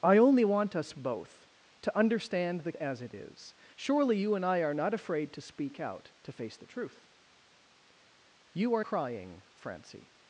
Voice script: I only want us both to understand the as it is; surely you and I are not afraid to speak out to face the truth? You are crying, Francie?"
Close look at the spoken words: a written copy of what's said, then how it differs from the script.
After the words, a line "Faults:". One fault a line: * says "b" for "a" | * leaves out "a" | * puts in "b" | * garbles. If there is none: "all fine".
I only want us both to understand the as it is; surely you and I are not afraid to speak out to face the truth? You are crying, Francie?"
Faults:
all fine